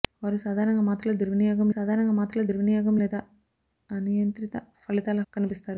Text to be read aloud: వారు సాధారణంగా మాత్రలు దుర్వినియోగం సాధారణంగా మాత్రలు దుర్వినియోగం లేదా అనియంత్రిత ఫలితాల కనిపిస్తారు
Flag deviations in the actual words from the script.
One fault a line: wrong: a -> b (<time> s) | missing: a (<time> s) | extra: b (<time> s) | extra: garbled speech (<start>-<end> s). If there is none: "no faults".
no faults